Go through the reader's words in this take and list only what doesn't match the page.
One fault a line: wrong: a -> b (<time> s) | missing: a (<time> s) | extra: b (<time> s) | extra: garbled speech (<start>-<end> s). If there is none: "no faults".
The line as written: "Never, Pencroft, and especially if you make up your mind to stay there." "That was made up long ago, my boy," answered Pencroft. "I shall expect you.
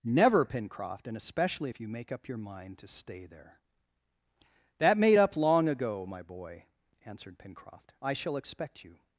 missing: was (5.0 s)